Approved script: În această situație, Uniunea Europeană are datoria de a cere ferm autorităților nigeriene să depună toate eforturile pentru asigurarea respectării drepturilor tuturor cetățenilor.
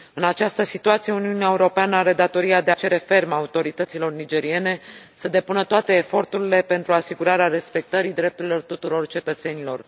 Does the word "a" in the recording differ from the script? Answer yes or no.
yes